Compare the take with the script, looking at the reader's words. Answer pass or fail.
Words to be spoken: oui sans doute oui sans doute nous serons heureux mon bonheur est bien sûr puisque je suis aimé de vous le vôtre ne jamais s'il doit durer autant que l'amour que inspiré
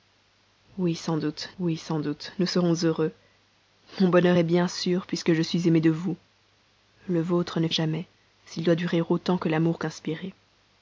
pass